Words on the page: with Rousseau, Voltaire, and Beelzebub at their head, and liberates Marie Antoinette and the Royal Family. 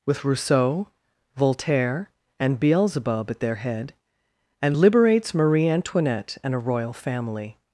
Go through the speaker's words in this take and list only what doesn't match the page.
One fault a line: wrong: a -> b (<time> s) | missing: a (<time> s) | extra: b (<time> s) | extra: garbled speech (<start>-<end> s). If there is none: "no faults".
wrong: the -> a (6.5 s)